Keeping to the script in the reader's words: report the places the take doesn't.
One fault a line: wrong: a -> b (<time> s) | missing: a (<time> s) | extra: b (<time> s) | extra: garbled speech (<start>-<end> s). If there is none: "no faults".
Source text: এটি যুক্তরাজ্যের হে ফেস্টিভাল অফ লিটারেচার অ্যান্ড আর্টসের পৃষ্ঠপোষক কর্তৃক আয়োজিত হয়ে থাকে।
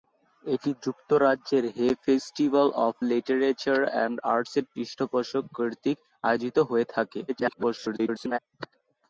extra: garbled speech (7.3-8.4 s)